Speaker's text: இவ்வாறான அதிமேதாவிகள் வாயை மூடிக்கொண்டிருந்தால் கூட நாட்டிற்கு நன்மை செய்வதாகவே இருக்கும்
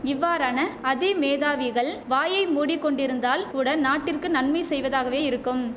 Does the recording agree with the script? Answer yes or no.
yes